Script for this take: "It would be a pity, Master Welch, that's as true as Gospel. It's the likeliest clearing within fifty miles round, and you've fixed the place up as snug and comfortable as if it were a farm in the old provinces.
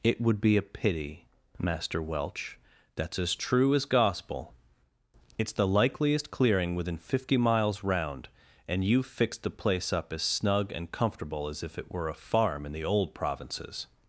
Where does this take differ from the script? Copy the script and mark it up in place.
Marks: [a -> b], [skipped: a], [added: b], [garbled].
"It would be a pity, Master Welch, that's as true as Gospel. It's the likeliest clearing within fifty miles round, and you've fixed the place up as snug and comfortable as if it were a farm in the old provinces.